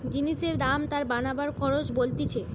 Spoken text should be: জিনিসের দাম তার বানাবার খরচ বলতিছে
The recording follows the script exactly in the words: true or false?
true